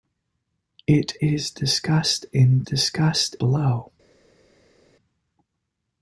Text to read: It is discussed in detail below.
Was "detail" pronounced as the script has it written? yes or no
no